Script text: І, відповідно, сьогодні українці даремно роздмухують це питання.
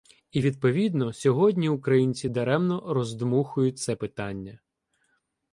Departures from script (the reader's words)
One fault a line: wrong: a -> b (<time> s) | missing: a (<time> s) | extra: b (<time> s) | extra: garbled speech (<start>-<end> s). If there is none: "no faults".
no faults